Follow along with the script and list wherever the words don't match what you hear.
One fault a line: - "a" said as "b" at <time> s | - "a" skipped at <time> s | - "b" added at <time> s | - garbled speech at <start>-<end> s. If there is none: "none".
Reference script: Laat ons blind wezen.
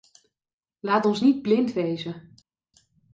- "niet" added at 1.2 s